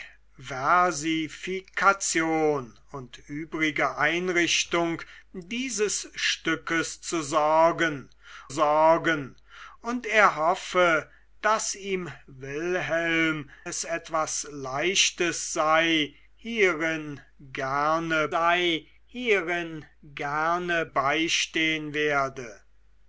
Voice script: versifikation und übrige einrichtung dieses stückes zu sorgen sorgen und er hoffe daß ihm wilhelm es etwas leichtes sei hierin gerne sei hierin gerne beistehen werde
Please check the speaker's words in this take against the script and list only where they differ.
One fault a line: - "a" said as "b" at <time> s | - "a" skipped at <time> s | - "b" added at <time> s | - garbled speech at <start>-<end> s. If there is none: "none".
none